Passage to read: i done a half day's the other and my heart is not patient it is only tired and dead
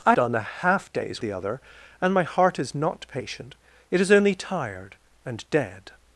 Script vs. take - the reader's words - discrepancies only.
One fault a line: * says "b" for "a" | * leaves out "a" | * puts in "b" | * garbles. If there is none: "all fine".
all fine